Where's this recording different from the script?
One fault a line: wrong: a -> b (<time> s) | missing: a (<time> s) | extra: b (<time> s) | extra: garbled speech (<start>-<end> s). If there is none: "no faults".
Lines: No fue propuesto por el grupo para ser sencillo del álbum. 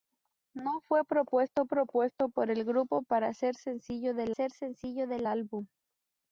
extra: propuesto (1.7 s)
extra: ser sencillo del (4.3 s)